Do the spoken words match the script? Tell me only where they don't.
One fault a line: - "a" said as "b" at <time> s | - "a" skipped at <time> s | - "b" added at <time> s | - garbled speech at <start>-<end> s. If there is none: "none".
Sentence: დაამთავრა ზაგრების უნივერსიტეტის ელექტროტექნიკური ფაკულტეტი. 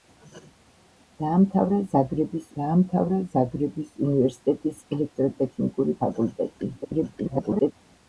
- "დაამთავრა ზაგრების" added at 2.6 s
- garbled speech at 6.8-7.7 s